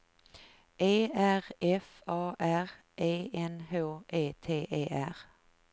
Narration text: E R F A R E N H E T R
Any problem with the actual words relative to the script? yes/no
yes